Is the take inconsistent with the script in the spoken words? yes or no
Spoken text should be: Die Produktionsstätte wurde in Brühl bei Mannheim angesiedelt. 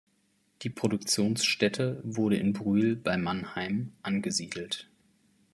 no